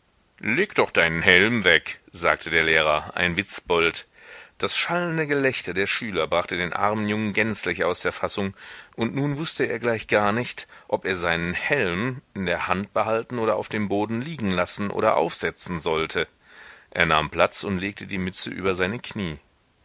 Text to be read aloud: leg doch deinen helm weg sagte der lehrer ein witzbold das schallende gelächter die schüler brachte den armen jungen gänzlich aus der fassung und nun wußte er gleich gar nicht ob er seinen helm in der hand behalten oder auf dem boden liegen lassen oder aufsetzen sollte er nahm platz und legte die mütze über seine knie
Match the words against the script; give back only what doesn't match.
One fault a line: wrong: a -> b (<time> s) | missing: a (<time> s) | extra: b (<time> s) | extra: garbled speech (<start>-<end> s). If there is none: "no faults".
wrong: die -> der (5.7 s)